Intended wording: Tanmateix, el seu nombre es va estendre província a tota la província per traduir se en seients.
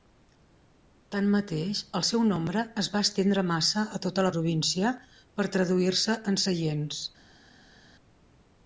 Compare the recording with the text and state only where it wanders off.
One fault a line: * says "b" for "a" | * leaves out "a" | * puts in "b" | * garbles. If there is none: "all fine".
* says "massa" for "província"